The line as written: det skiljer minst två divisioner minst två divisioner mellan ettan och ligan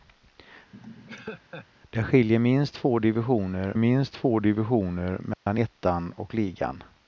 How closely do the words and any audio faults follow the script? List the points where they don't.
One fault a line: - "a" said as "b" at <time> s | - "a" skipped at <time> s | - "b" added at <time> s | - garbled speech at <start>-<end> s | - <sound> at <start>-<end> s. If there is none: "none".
- laugh at 0.7-1.7 s
- dropout at 5.3-5.5 s